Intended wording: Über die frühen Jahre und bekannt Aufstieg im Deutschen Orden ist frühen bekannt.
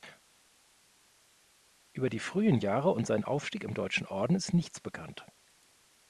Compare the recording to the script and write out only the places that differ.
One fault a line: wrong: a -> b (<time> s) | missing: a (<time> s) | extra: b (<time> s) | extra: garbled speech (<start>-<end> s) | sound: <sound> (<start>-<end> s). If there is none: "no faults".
wrong: bekannt -> seinen (3.1 s)
wrong: frühen -> nichts (4.5 s)